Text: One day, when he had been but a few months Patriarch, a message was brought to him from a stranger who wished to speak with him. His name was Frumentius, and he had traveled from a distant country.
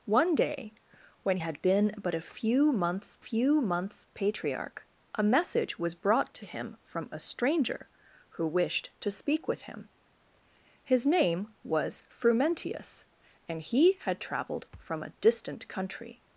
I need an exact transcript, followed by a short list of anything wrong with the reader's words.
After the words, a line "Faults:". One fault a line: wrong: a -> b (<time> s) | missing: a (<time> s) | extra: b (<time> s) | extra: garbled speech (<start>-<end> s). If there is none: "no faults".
One day, when had been but a few months few months Patriarch, a message was brought to him from a stranger who wished to speak with him. His name was Frumentius, and he had traveled from a distant country.
Faults:
missing: he (1.4 s)
extra: few months (3.2 s)